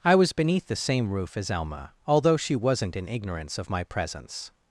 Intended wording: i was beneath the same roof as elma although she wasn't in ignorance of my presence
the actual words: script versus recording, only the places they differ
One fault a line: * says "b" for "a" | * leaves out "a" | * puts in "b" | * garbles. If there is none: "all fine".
all fine